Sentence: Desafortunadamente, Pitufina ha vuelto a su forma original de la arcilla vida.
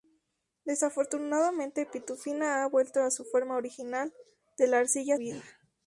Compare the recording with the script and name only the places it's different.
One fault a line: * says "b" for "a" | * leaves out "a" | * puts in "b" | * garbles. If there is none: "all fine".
all fine